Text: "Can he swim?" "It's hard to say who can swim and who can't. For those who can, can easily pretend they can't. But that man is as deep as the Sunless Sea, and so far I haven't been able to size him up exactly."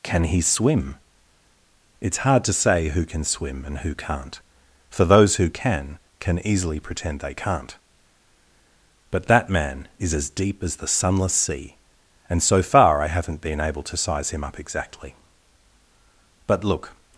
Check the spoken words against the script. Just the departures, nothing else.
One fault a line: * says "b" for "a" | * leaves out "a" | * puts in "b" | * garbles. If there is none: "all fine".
* puts in "But look"